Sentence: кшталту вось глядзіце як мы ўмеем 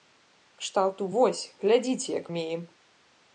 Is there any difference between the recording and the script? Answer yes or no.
yes